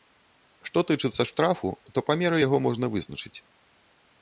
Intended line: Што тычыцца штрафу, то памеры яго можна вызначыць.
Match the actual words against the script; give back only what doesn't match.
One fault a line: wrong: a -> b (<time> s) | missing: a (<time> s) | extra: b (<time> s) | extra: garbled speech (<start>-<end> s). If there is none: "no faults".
no faults